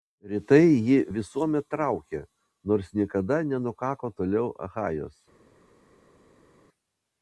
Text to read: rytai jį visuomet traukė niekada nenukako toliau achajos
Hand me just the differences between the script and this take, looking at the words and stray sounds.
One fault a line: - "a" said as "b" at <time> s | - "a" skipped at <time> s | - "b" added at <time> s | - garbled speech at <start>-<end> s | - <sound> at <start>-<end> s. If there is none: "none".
- "nors" added at 2.7 s